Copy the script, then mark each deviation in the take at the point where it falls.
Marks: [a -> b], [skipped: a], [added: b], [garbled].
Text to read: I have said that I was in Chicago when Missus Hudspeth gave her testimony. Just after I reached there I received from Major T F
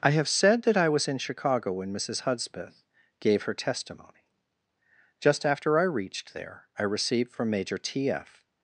I have said that I was in Chicago when Missus Hudspeth gave her testimony. Just after I reached there I received from Major T F